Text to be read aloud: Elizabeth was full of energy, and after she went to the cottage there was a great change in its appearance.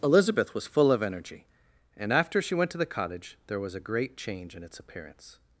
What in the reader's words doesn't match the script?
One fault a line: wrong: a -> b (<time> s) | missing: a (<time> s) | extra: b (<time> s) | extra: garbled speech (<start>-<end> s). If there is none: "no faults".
no faults